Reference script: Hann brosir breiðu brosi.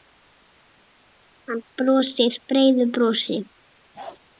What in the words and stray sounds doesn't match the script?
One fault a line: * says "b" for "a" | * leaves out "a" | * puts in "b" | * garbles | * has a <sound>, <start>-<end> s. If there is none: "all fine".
* has a bark, 3.9-4.2 s